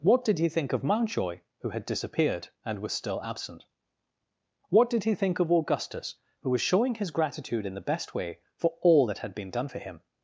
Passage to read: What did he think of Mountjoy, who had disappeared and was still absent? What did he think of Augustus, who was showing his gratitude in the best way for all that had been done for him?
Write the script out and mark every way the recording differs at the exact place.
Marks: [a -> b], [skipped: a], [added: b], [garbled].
What did he think of Mountjoy, who had disappeared and was still absent? What did he think of Augustus, who was showing his gratitude in the best way for all that had been done for him?